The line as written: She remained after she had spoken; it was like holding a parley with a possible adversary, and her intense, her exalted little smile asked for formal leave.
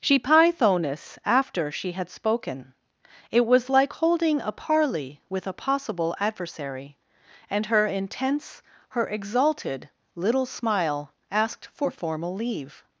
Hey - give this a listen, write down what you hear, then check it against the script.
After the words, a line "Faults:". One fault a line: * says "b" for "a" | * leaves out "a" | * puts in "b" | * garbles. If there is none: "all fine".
She pythoness after she had spoken; it was like holding a parley with a possible adversary, and her intense, her exalted little smile asked for formal leave.
Faults:
* says "pythoness" for "remained"